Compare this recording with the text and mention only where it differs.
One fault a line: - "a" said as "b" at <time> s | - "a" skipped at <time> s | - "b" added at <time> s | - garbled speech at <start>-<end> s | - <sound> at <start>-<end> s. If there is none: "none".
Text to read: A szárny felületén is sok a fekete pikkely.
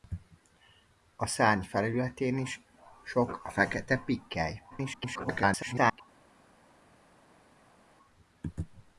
- garbled speech at 4.7-6.0 s